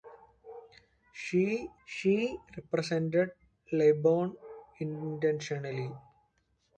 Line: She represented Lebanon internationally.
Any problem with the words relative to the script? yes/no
yes